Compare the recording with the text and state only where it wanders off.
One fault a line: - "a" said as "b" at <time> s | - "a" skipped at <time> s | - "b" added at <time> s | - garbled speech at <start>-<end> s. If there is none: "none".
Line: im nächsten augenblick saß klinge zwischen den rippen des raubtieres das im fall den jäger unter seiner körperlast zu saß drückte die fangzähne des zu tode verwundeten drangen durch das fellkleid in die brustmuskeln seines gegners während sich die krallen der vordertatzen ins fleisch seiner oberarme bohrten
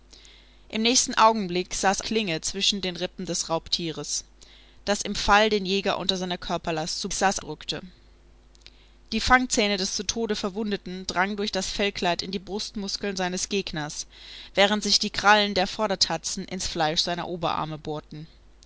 none